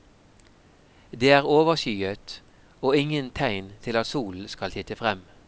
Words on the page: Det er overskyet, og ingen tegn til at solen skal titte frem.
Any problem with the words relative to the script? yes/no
no